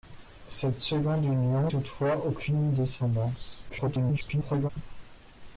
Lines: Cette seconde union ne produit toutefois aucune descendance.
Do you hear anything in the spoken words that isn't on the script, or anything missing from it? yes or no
yes